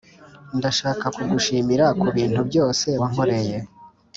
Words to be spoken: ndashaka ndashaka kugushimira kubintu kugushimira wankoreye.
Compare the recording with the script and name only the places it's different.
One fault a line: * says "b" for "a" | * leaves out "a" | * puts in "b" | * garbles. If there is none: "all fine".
* leaves out "ndashaka"
* says "byose" for "kugushimira"